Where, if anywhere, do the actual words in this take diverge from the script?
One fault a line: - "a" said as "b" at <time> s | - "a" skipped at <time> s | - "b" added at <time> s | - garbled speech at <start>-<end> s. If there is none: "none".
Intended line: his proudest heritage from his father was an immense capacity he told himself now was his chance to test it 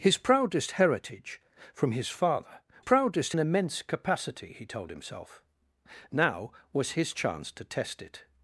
- "was" said as "proudest" at 2.8 s